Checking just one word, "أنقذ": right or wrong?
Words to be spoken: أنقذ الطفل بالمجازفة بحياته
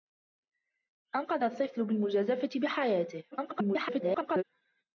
right